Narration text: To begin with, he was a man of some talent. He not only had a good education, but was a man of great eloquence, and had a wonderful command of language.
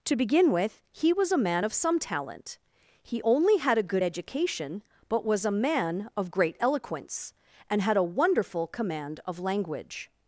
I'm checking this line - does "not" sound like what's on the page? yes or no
no